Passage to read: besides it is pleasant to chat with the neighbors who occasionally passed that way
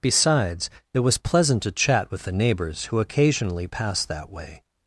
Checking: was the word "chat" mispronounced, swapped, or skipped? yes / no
no